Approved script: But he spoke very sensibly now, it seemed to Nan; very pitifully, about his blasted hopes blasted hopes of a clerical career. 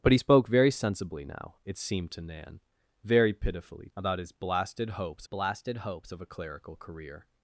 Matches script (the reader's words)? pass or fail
pass